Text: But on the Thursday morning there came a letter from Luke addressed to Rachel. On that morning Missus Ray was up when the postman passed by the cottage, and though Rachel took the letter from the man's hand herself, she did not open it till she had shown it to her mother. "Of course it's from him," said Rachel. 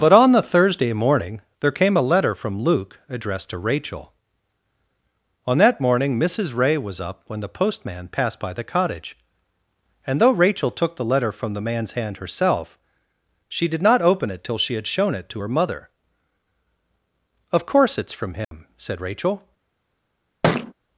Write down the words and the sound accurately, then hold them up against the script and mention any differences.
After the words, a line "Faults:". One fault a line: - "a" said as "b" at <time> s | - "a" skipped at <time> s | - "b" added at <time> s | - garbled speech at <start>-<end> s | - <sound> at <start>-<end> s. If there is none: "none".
But on the Thursday morning there came a letter from Luke addressed to Rachel. On that morning Missus Ray was up when the postman passed by the cottage, and though Rachel took the letter from the man's hand herself, she did not open it till she had shown it to her mother. "Of course it's from him," said Rachel.
Faults:
- dropout at 18.4-18.5 s
- thud at 20.4-20.7 s